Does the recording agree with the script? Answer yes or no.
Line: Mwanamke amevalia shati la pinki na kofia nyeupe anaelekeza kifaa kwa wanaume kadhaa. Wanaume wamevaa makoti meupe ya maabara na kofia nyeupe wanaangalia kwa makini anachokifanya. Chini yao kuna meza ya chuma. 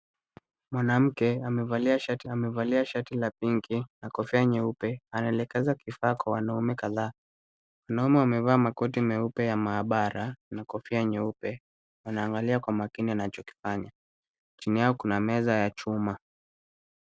no